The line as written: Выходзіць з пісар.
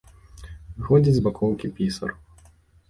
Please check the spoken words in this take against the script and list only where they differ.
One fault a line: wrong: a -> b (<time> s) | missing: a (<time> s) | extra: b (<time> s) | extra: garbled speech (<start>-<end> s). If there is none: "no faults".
extra: бакоўкі (1.3 s)